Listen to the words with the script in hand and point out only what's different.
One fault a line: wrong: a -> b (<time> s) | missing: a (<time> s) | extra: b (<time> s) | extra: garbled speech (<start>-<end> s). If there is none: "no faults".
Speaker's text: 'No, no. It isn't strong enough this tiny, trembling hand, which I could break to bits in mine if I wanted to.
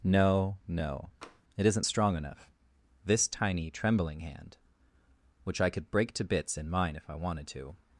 no faults